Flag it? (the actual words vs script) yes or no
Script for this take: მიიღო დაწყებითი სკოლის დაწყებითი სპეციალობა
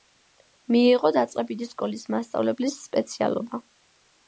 yes